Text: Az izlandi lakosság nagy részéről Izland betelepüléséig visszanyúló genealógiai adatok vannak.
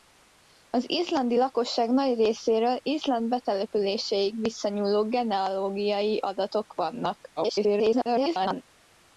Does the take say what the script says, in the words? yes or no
no